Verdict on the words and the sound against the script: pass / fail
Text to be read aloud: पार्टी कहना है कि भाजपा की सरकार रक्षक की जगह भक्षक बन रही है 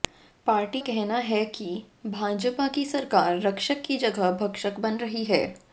pass